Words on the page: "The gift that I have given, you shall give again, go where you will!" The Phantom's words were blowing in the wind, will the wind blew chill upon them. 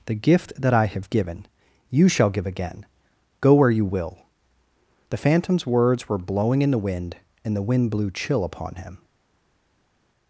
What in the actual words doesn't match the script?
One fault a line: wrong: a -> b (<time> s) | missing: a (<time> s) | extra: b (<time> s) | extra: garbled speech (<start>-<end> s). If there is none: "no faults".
wrong: will -> and (7.4 s)
wrong: them -> him (8.7 s)